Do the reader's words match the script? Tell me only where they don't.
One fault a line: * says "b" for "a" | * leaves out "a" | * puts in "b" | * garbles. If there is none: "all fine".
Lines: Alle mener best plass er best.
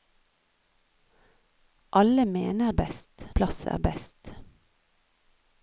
all fine